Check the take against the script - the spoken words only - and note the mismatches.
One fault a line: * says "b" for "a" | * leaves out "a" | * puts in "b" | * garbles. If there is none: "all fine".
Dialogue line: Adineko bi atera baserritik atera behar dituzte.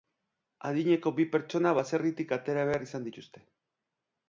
* says "pertsona" for "atera"
* puts in "izan"